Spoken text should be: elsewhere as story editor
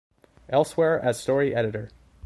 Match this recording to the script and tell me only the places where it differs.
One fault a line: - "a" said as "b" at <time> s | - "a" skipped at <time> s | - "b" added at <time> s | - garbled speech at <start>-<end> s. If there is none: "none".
none